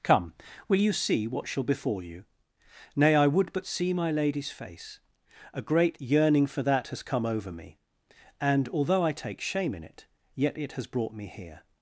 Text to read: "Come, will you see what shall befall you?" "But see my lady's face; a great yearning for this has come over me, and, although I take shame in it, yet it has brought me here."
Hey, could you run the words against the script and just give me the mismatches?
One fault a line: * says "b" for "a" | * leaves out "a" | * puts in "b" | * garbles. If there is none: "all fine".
* puts in "Nay I would"
* says "that" for "this"